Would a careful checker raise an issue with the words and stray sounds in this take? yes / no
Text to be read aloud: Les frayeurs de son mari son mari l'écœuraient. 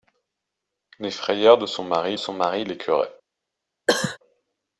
yes